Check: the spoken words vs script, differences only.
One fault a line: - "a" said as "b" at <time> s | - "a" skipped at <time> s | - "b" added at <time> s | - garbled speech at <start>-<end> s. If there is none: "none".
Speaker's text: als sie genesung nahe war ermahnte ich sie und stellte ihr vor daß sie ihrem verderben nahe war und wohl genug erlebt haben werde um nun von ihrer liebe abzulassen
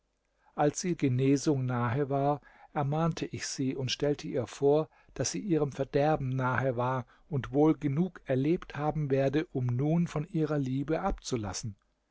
none